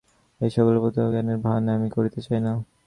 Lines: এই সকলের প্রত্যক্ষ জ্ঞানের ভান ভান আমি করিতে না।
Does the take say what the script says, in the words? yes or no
no